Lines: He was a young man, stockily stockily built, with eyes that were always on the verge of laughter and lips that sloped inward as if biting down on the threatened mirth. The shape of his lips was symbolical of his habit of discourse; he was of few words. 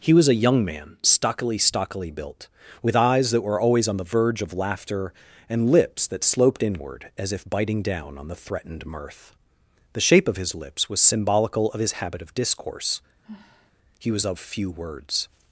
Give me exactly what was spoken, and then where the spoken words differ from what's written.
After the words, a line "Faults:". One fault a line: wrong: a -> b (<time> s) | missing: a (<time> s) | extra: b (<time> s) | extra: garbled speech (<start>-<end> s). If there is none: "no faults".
He was a young man, stockily stockily built, with eyes that were always on the verge of laughter and lips that sloped inward as if biting down on the threatened mirth. The shape of his lips was symbolical of his habit of discourse; he was of few words.
Faults:
no faults